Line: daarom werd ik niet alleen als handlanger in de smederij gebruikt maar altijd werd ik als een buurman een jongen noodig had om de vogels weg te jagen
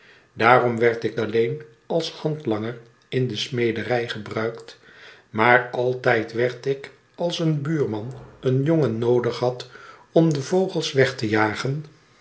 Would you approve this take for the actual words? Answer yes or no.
no